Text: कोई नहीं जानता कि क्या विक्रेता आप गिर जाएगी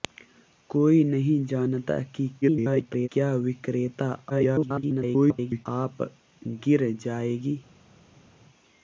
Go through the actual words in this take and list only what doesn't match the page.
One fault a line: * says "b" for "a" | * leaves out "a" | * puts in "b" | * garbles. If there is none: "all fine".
* garbles
* garbles